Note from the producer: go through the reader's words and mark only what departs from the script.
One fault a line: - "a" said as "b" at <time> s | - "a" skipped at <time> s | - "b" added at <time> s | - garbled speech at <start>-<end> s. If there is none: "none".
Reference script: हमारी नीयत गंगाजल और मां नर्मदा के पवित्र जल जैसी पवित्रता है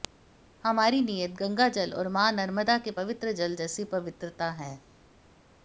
none